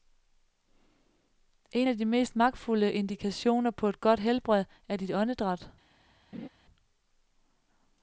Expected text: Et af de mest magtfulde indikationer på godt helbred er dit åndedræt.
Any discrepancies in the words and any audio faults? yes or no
yes